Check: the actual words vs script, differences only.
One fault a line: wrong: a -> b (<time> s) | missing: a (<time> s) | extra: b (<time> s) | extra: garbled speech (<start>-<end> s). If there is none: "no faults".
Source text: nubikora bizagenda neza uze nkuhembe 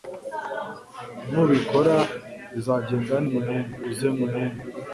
wrong: neza -> nkuhembe (3.3 s)